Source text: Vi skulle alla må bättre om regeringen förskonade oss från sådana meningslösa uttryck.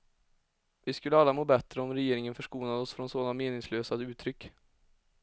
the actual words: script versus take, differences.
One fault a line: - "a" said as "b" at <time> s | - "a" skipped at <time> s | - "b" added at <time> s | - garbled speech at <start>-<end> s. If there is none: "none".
none